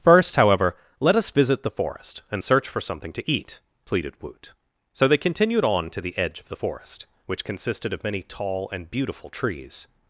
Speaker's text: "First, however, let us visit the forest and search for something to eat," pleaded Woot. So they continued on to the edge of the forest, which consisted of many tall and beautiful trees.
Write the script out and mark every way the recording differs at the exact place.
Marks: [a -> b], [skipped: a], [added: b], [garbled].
"First, however, let us visit the forest and search for something to eat," pleaded Woot. So they continued on to the edge of the forest, which consisted of many tall and beautiful trees.